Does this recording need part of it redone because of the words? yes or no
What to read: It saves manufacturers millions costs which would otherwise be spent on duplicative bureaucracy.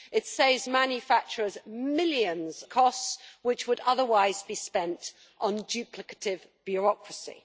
no